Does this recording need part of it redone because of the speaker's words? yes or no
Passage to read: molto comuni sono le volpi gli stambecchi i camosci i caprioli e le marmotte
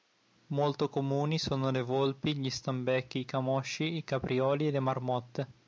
no